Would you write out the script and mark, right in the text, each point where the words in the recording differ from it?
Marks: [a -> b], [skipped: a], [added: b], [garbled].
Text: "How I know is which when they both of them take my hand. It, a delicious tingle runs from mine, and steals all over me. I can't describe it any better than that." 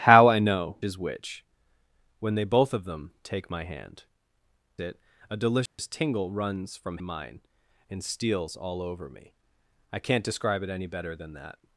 "How I know is which when they both of them take my hand. It, a delicious tingle runs from mine, and steals all over me. I can't describe it any better than that."